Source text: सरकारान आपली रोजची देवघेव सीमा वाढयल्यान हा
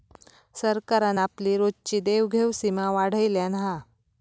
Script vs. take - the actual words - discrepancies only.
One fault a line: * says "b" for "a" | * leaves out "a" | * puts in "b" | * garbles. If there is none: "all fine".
all fine